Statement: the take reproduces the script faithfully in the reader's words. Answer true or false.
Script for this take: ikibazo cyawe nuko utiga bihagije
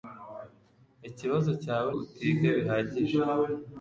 false